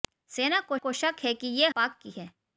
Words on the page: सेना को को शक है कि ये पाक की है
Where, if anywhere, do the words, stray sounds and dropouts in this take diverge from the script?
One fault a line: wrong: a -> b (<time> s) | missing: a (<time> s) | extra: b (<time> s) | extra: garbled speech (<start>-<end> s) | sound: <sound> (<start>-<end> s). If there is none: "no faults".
no faults